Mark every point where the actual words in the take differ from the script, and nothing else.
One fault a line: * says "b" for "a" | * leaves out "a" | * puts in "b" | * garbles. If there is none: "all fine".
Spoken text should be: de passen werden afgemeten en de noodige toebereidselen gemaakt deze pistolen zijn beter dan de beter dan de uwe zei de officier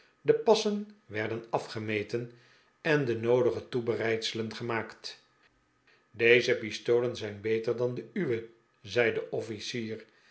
* leaves out "beter dan de"